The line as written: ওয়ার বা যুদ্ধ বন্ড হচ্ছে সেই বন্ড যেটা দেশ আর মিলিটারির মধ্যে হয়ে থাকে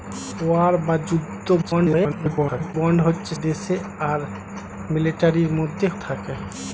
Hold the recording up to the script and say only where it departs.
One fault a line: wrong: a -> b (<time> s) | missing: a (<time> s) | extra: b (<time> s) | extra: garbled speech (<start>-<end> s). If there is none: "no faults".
extra: garbled speech (1.6-2.8 s)
missing: সেই বন্ড যেটা (3.3 s)
missing: হয়ে (5.9 s)